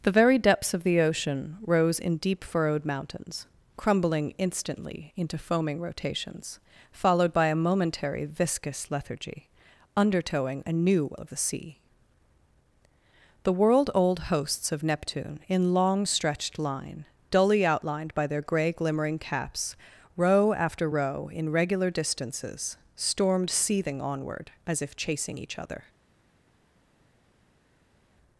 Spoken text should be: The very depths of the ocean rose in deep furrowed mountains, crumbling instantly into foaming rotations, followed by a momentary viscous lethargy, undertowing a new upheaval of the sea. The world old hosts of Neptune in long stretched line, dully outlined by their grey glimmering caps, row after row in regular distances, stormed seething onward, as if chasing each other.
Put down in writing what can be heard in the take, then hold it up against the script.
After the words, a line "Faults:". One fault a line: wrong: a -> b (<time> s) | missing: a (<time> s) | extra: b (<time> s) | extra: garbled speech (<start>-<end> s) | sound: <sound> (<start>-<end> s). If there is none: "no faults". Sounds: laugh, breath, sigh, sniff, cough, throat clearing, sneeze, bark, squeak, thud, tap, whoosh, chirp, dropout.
The very depths of the ocean rose in deep furrowed mountains, crumbling instantly into foaming rotations, followed by a momentary viscous lethargy, undertowing a new of the sea. The world old hosts of Neptune in long stretched line, dully outlined by their grey glimmering caps, row after row in regular distances, stormed seething onward, as if chasing each other.
Faults:
missing: upheaval (11.1 s)